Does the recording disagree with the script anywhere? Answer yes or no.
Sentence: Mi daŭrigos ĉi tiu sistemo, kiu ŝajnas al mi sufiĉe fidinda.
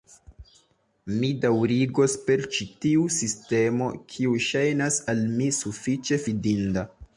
yes